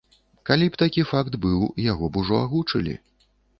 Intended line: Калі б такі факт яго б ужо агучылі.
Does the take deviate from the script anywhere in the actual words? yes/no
yes